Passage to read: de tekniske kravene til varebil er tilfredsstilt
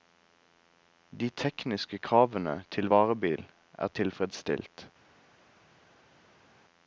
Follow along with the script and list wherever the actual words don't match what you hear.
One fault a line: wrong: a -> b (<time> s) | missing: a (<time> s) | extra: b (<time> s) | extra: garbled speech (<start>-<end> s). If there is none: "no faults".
no faults